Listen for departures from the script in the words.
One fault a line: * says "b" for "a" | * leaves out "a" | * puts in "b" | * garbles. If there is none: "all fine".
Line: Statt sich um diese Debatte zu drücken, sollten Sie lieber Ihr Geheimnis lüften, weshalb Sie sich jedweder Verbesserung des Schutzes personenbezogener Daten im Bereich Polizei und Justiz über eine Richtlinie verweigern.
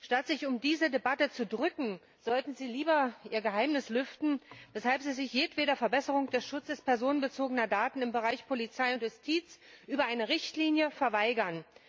all fine